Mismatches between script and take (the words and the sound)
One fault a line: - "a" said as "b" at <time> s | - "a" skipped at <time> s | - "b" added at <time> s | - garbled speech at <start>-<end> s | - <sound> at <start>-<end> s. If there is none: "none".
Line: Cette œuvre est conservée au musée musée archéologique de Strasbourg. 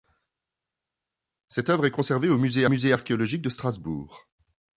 none